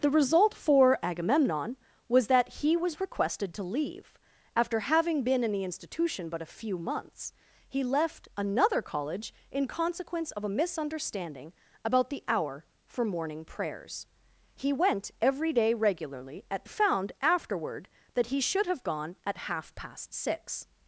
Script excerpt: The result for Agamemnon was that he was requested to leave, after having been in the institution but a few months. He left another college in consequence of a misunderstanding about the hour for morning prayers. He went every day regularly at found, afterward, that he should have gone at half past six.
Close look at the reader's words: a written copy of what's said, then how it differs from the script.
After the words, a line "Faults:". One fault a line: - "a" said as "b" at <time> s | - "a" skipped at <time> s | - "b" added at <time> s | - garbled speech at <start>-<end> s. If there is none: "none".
The result for Agamemnon was that he was requested to leave, after having been in the institution but a few months. He left another college in consequence of a misunderstanding about the hour for morning prayers. He went every day regularly at found, afterward, that he should have gone at half past six.
Faults:
none